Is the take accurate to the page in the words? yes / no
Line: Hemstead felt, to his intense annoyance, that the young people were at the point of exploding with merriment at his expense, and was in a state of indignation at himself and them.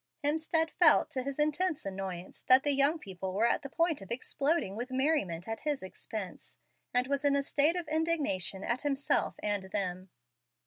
yes